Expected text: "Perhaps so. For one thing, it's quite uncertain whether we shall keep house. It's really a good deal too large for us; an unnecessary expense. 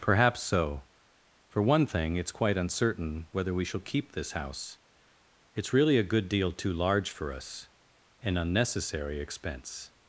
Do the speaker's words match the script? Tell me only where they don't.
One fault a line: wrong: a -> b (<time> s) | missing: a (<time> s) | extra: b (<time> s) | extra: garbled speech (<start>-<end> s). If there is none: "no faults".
extra: this (4.1 s)